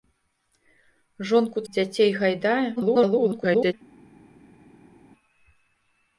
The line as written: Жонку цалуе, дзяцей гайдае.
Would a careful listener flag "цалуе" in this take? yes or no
yes